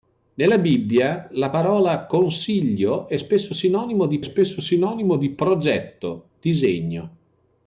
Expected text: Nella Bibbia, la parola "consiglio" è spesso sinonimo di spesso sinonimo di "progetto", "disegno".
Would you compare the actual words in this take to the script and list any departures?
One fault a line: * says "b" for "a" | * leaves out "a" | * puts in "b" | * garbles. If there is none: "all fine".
all fine